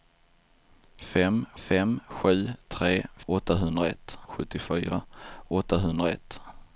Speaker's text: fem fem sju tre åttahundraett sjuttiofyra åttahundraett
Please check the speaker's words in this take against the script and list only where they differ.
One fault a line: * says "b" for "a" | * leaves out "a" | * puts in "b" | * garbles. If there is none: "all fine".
all fine